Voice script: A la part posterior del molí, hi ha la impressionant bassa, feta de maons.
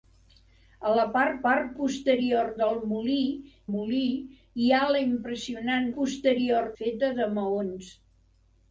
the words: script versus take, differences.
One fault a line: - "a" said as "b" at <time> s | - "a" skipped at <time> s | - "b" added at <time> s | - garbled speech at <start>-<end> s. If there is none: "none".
- "part" added at 1.5 s
- "molí" added at 3.7 s
- "bassa" said as "posterior" at 6.0 s